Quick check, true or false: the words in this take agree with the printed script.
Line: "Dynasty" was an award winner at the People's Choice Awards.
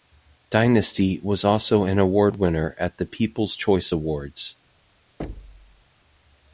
false